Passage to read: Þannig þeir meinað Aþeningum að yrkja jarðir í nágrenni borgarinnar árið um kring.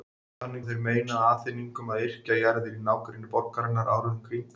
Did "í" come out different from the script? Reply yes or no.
no